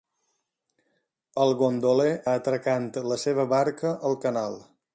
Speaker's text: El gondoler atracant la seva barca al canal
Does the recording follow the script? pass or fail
pass